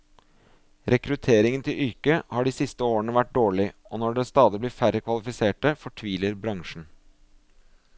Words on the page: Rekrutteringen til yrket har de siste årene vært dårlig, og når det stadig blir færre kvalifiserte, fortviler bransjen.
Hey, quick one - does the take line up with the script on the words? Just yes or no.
yes